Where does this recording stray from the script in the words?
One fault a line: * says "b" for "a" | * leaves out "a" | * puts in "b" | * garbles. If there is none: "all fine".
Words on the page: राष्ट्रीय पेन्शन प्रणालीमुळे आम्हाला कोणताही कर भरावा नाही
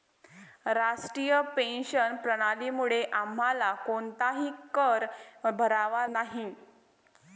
all fine